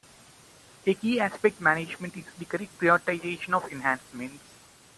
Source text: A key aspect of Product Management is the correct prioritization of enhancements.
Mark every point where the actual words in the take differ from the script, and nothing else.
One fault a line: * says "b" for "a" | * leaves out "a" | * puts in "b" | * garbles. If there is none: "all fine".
* leaves out "of Product"